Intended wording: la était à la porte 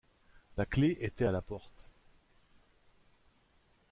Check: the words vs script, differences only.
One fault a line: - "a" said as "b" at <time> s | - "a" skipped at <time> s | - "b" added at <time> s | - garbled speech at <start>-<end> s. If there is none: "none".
- "clef" added at 0.6 s